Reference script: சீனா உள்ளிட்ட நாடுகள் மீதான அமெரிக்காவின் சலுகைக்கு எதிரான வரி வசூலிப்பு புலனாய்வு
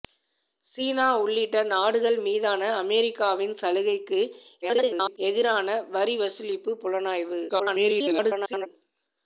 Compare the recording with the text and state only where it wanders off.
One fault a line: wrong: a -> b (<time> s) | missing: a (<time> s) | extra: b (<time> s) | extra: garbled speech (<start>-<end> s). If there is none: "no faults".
extra: garbled speech (4.6-5.2 s)
extra: garbled speech (7.5-8.7 s)